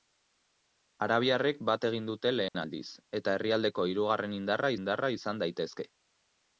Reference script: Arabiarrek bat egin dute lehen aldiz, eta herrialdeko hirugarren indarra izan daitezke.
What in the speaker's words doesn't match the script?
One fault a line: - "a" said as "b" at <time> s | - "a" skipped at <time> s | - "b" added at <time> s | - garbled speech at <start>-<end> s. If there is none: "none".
- "indarra" added at 4.8 s